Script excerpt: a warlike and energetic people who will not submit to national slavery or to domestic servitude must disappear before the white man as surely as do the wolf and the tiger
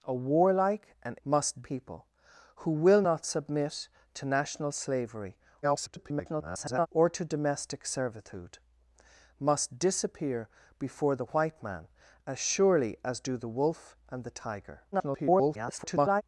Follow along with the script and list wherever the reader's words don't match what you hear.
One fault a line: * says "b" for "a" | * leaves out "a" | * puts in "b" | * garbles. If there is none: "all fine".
* says "must" for "energetic"
* garbles
* garbles